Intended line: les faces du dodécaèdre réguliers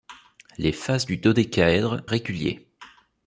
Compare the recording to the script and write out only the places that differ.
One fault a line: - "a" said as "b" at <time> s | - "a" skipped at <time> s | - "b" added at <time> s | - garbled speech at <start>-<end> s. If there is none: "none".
none